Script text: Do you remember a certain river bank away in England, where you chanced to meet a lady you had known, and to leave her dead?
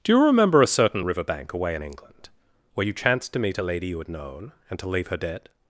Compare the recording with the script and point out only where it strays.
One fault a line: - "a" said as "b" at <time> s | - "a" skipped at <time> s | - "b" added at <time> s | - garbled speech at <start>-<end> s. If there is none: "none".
none